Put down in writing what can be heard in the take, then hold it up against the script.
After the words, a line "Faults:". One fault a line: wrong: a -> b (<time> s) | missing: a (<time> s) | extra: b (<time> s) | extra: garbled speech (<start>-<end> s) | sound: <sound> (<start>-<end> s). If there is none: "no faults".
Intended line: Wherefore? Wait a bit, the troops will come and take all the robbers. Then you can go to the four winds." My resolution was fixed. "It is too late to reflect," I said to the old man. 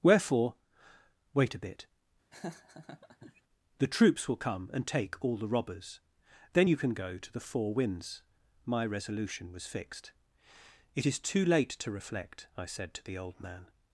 Wherefore? Wait a bit, the troops will come and take all the robbers. Then you can go to the four winds." My resolution was fixed. "It is too late to reflect," I said to the old man.
Faults:
sound: laugh (2.3-3.4 s)